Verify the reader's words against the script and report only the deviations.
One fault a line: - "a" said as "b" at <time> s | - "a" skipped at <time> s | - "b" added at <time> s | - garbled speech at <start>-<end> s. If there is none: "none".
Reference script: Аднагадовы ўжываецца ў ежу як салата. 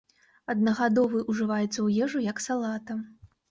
none